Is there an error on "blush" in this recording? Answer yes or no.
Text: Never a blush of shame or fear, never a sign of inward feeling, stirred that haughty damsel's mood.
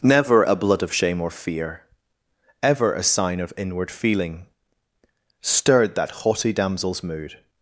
yes